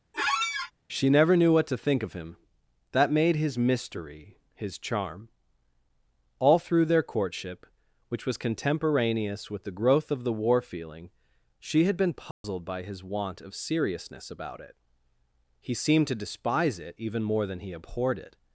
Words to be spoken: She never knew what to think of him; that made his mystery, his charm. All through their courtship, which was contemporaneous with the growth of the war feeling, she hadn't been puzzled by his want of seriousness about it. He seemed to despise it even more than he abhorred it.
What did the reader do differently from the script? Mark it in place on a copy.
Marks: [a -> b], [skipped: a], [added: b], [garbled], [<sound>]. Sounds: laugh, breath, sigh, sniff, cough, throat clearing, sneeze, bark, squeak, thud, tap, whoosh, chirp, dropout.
[squeak] She never knew what to think of him; that made his mystery, his charm. All through their courtship, which was contemporaneous with the growth of the war feeling, she [hadn't -> had] been puzzled [dropout] by his want of seriousness about it. He seemed to despise it even more than he abhorred it.